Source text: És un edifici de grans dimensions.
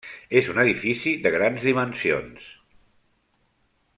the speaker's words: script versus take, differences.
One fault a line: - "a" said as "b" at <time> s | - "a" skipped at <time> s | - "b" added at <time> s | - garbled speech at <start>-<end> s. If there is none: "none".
none